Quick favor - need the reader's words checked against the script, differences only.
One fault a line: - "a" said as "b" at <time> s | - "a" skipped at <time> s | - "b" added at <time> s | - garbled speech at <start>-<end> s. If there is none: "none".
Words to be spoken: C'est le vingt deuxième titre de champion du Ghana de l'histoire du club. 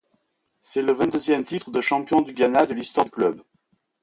none